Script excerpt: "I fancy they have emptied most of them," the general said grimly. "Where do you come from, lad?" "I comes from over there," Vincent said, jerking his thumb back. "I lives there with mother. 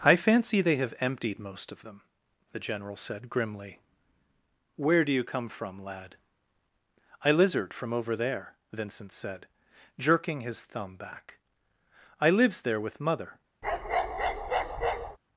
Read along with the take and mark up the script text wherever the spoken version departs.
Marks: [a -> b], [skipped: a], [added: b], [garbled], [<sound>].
"I fancy they have emptied most of them," the general said grimly. "Where do you come from, lad?" "I [comes -> lizard] from over there," Vincent said, jerking his thumb back. "I lives there with mother. [bark]